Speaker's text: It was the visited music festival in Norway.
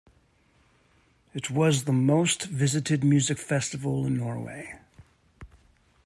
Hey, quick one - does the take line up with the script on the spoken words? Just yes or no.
no